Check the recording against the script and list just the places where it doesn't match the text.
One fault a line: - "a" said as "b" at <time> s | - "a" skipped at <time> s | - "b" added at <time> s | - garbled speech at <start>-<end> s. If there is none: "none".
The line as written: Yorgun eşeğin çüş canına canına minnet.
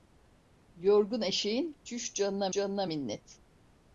none